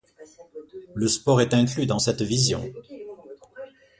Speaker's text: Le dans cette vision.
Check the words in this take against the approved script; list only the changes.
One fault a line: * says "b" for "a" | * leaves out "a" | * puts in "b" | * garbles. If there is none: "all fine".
* puts in "sport est inclus"